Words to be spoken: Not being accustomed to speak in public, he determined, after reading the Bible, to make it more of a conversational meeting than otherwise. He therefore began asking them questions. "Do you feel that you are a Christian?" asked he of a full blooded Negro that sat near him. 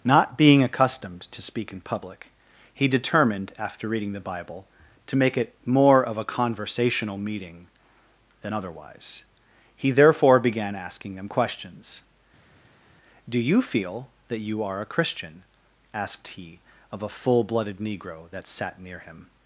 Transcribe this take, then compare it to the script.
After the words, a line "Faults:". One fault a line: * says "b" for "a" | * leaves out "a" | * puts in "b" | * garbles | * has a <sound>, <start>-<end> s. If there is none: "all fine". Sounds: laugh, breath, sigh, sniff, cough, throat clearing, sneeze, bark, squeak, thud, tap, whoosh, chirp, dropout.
Not being accustomed to speak in public, he determined, after reading the Bible, to make it more of a conversational meeting than otherwise. He therefore began asking them questions. "Do you feel that you are a Christian?" asked he of a full blooded Negro that sat near him.
Faults:
all fine